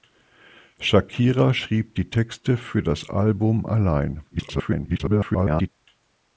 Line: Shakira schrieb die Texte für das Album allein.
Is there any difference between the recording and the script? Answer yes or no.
yes